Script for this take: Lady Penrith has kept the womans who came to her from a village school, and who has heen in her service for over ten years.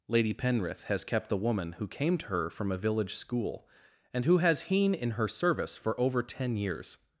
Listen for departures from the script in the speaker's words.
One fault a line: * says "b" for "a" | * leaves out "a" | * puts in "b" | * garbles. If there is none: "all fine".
* says "woman" for "womans"